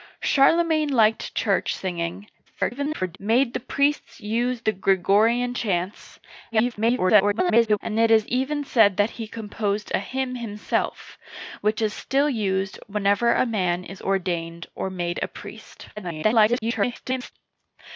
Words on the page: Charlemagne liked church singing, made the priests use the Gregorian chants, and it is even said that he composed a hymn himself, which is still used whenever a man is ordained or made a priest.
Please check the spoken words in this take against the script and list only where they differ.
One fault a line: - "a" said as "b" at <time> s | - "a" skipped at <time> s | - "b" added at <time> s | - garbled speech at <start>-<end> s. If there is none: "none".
- garbled speech at 2.5-3.2 s
- garbled speech at 6.5-7.8 s
- garbled speech at 16.0-17.3 s